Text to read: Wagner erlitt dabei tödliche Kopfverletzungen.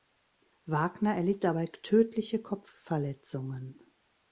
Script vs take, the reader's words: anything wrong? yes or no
no